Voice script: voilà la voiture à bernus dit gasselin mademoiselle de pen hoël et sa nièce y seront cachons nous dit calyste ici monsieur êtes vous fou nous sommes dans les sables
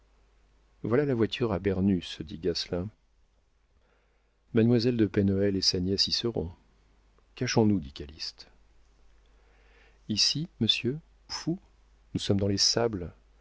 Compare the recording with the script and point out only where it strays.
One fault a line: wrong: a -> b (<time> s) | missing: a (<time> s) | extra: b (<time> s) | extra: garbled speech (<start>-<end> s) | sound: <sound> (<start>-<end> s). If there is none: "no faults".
missing: êtes vous (11.0 s)